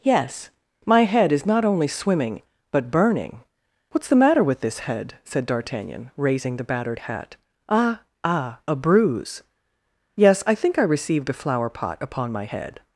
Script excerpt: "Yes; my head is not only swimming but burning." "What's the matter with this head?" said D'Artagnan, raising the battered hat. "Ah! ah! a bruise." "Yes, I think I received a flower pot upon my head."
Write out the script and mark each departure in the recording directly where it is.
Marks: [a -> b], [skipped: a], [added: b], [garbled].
"Yes; my head is not only swimming but burning." "What's the matter with this head?" said D'Artagnan, raising the battered hat. "Ah! ah! a bruise." "Yes, I think I received a flower pot upon my head."